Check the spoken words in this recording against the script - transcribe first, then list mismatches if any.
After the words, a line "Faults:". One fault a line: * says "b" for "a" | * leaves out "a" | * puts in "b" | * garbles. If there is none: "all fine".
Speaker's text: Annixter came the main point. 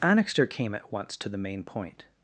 Annixter came at once to the main point.
Faults:
* puts in "at once to"